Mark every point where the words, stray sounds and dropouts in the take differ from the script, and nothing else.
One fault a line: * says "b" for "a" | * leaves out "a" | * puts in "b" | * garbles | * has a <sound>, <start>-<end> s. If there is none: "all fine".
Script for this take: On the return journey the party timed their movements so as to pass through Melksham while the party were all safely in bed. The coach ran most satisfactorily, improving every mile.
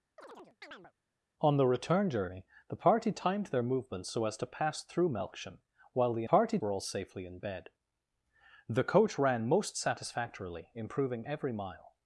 * has a chirp, 0.2-0.9 s